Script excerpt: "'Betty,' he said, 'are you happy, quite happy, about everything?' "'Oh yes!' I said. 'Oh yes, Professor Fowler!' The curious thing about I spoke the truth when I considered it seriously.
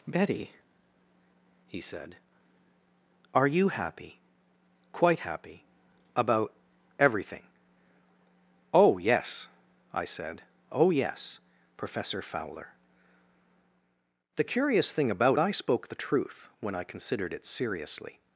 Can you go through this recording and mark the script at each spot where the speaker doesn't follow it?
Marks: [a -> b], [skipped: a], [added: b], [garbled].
"'Betty,' he said, 'are you happy, quite happy, about everything?' "'Oh yes!' I said. 'Oh yes, Professor Fowler!' The curious thing about I spoke the truth when I considered it seriously.